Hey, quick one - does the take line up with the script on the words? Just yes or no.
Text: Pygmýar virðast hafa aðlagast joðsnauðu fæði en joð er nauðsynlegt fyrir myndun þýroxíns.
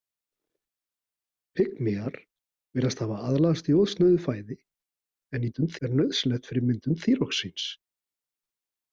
no